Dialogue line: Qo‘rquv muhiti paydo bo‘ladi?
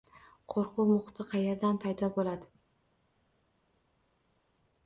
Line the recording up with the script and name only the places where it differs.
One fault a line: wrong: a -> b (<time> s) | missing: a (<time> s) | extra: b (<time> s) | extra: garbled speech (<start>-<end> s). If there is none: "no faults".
extra: qayerdan (1.4 s)